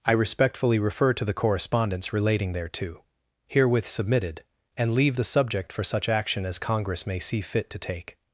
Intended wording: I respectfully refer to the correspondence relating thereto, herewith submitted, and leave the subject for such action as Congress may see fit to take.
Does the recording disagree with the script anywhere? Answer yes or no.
no